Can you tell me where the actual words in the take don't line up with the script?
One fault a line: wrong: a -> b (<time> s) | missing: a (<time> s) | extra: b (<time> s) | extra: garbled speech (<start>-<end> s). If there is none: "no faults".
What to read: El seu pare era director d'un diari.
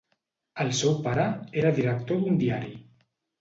no faults